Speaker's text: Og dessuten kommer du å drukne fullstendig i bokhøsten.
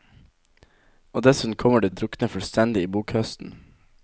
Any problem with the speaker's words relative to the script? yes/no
no